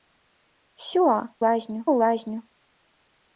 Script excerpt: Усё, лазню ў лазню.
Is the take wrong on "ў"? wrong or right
right